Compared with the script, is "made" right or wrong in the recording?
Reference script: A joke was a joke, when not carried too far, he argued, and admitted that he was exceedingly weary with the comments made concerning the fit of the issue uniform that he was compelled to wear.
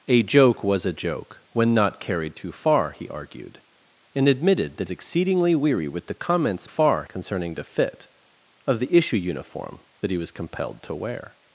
wrong